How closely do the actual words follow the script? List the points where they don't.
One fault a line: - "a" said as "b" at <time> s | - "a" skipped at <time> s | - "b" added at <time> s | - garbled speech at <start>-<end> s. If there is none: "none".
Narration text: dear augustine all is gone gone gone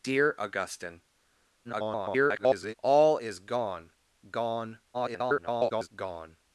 - garbled speech at 1.6-2.7 s
- garbled speech at 4.9-5.9 s